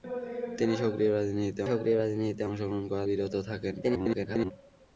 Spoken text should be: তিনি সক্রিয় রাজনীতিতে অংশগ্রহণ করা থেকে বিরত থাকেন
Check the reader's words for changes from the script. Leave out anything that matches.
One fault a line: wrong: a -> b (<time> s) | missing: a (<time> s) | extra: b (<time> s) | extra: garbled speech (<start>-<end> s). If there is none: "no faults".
extra: সক্রিয় রাজনীতিতে (1.7 s)
missing: থেকে (3.0 s)
extra: garbled speech (3.8-4.5 s)